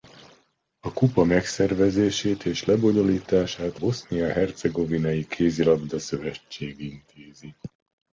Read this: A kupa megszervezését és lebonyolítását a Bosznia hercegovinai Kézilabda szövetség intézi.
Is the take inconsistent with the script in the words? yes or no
yes